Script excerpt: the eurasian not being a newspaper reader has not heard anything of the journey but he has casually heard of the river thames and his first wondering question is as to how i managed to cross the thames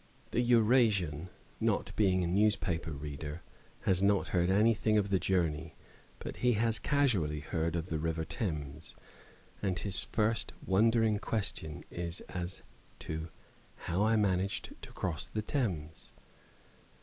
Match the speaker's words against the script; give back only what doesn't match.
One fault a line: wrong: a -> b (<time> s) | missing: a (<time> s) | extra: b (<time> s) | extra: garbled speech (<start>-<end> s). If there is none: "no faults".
no faults